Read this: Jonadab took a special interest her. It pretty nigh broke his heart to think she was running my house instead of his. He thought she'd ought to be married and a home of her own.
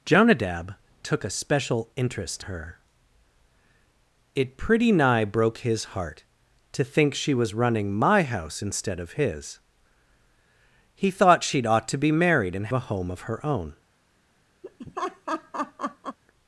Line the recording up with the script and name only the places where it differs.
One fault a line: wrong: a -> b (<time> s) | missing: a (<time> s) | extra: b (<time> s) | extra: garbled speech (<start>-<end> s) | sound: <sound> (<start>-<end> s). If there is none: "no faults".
sound: laugh (14.6-16.2 s)